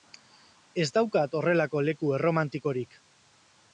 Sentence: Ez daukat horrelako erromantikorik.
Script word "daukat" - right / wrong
right